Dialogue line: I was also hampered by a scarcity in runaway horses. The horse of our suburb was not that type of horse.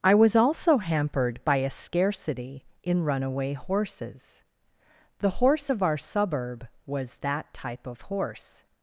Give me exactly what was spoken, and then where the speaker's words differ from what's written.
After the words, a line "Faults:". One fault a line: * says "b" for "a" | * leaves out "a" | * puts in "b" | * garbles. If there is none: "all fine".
I was also hampered by a scarcity in runaway horses. The horse of our suburb was that type of horse.
Faults:
* leaves out "not"